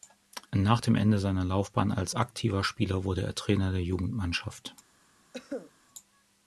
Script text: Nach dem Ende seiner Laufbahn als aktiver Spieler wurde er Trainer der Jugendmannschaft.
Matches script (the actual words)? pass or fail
pass